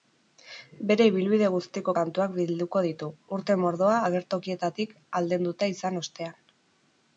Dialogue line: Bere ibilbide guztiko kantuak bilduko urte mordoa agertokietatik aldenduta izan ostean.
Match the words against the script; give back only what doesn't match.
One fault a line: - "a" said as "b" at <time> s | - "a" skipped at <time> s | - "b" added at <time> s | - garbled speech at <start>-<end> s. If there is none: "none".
- "ditu" added at 2.9 s